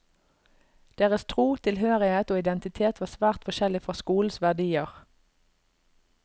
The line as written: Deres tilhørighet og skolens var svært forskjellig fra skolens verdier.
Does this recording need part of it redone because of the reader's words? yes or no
yes